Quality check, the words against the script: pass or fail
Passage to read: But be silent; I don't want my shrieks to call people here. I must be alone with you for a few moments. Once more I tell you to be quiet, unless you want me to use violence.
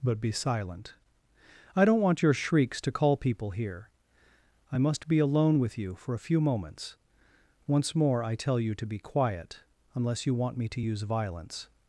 fail